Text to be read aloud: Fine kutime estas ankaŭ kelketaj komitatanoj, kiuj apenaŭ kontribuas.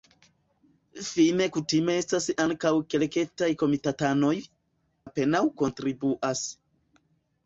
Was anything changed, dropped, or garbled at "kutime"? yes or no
no